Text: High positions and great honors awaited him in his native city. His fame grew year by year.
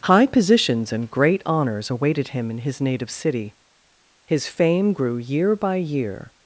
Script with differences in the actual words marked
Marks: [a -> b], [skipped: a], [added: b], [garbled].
High positions and great honors awaited him in his native city. His fame grew year by year.